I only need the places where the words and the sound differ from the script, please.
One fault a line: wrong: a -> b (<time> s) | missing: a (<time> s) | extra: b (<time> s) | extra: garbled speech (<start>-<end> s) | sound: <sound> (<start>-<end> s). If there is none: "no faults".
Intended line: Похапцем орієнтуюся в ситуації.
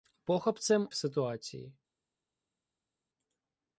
missing: орієнтуюся (0.9 s)